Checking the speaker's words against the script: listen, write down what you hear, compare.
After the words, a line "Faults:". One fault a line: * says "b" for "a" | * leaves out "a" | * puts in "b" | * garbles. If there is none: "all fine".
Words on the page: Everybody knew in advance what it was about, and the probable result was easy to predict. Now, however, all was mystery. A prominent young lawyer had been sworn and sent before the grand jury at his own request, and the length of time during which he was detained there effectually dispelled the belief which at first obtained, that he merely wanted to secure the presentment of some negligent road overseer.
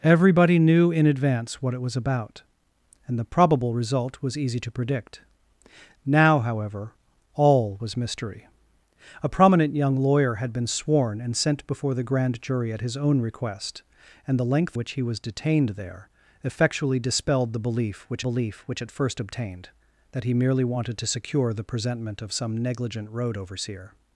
Everybody knew in advance what it was about, and the probable result was easy to predict. Now, however, all was mystery. A prominent young lawyer had been sworn and sent before the grand jury at his own request, and the length which he was detained there effectually dispelled the belief which belief which at first obtained, that he merely wanted to secure the presentment of some negligent road overseer.
Faults:
* leaves out "of time during"
* puts in "belief which"